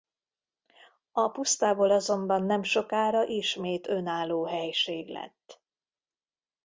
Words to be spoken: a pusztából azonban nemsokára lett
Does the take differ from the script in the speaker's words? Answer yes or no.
yes